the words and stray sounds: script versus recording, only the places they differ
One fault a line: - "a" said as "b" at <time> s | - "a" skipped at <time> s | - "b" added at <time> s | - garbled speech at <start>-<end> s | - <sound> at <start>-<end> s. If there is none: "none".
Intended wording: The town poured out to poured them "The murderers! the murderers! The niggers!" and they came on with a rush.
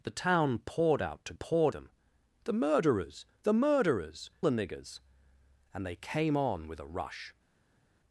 none